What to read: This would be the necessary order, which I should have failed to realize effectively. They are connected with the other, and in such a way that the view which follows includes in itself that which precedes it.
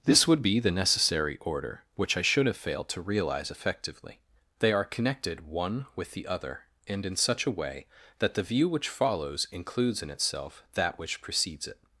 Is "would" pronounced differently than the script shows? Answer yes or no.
no